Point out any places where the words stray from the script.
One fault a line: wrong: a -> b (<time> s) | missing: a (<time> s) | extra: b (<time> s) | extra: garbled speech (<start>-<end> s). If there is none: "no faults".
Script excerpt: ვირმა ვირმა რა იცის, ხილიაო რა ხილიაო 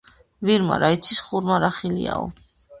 missing: ვირმა (0.8 s)
wrong: ხილიაო -> ხურმა (1.3 s)